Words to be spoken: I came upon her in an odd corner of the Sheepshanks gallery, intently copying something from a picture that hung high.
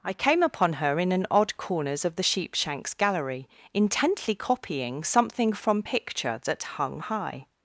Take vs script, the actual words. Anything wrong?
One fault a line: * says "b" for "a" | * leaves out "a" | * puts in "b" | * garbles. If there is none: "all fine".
* says "corners" for "corner"
* leaves out "a"